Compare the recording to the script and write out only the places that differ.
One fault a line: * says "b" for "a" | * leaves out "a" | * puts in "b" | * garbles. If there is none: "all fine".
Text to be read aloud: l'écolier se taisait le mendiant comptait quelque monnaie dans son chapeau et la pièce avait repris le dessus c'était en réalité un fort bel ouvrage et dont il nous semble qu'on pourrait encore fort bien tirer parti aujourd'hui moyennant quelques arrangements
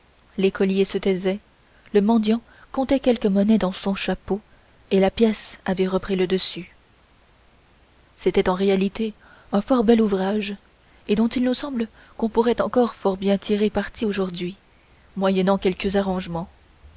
all fine